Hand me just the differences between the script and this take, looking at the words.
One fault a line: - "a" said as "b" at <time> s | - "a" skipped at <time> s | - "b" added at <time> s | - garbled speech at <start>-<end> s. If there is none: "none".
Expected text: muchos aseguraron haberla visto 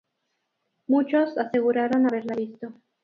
none